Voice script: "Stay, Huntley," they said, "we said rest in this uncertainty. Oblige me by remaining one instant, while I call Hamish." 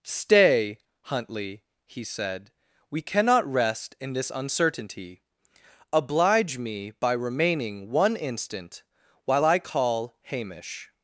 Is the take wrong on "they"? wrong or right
wrong